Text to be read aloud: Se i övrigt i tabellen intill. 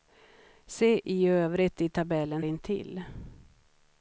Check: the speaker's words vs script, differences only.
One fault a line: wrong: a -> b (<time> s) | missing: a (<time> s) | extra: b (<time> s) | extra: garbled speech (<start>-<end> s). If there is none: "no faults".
no faults